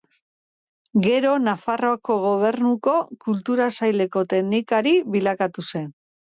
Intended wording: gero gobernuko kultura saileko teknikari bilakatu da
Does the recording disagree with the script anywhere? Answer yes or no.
yes